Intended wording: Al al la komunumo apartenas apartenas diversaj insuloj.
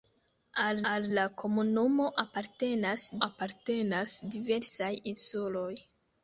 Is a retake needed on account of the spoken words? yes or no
no